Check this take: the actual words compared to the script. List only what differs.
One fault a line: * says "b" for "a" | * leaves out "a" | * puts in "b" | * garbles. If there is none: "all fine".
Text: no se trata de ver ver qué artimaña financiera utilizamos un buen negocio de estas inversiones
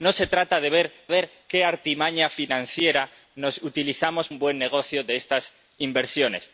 all fine